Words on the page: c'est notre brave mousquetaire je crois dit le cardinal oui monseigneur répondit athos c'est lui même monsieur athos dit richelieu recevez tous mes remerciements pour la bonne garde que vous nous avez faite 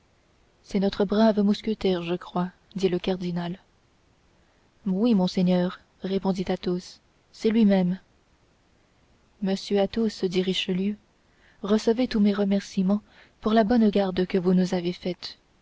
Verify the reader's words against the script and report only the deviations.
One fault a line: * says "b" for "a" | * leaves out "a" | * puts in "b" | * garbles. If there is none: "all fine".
all fine